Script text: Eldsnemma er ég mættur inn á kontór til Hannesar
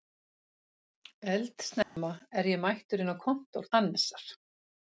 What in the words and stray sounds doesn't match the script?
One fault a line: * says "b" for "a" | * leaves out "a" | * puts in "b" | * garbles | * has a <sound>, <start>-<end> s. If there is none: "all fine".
* has a dropout, 1.8-2.0 s
* leaves out "til"